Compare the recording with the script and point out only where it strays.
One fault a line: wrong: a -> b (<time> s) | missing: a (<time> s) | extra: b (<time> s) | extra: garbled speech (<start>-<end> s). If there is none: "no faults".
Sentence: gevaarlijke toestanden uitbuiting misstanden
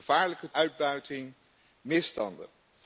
missing: toestanden (0.5 s)